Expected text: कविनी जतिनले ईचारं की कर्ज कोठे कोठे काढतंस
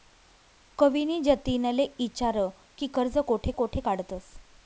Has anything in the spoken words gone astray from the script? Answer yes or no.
no